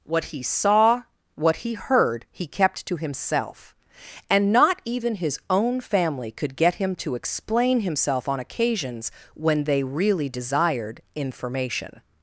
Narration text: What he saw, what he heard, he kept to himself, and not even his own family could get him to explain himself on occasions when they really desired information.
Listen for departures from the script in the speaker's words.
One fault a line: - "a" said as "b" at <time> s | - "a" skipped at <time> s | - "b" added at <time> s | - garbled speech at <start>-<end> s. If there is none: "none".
none